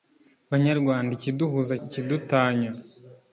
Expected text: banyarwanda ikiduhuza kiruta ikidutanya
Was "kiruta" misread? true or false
true